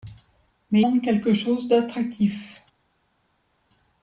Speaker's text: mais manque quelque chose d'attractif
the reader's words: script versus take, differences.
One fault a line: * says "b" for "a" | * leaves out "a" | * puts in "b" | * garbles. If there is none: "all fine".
all fine